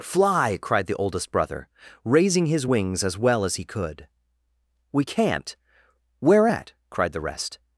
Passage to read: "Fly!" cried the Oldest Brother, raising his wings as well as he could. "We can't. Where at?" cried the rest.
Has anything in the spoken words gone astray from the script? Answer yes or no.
no